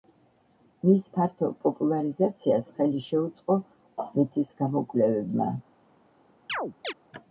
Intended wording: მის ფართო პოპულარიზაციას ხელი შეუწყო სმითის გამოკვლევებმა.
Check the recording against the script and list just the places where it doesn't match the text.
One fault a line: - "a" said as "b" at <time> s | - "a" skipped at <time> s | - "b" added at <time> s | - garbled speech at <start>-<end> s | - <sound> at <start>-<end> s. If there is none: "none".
- chirp at 6.5-6.9 s